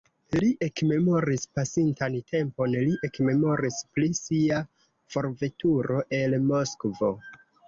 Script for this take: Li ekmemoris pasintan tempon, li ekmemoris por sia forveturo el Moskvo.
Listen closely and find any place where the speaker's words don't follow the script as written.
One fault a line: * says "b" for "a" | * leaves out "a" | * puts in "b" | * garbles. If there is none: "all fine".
* says "pri" for "por"